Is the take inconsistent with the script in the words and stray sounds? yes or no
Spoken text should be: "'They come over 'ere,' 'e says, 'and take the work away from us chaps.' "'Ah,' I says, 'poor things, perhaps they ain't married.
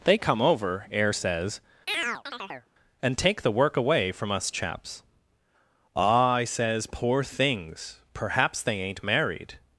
yes